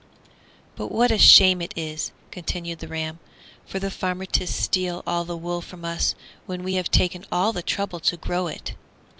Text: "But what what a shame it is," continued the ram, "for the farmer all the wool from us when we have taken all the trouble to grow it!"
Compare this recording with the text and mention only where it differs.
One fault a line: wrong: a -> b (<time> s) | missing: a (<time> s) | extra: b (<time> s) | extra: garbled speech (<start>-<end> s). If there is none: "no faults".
missing: what (1.1 s)
extra: to steal (4.2 s)